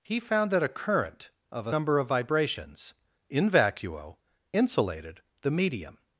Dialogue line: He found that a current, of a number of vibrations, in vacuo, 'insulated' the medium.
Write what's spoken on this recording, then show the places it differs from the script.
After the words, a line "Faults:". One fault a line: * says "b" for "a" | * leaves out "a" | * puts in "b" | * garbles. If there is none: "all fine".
He found that a current, of a number of vibrations, in vacuo, 'insulated' the medium.
Faults:
all fine